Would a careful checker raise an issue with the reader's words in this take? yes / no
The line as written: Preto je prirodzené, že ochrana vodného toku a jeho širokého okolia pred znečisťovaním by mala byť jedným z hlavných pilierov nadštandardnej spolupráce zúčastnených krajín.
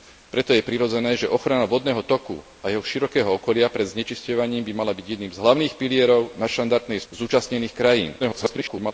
yes